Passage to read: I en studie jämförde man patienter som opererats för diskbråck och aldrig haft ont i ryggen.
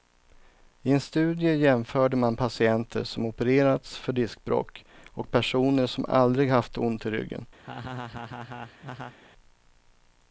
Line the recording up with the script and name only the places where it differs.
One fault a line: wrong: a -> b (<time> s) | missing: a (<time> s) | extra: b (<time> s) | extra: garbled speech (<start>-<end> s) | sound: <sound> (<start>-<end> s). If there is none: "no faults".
extra: personer som (5.3 s)
sound: laugh (7.6-9.2 s)